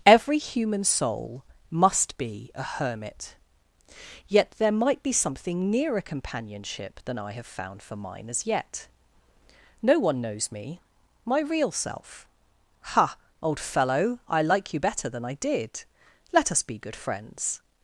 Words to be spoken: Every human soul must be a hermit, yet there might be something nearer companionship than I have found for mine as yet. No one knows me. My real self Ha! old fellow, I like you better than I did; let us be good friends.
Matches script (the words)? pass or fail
pass